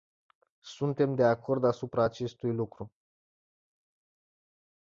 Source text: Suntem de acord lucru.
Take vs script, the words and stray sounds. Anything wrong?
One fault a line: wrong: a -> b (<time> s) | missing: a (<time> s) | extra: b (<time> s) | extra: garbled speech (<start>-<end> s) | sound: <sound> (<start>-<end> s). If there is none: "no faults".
extra: asupra acestui (1.6 s)